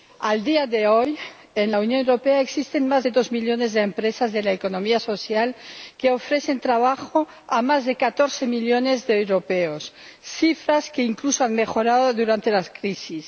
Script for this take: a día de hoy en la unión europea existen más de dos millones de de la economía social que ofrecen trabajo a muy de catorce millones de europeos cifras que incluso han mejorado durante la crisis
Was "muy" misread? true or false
true